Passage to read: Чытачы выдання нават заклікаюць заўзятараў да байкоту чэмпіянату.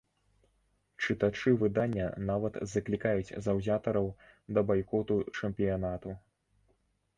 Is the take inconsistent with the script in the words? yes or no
no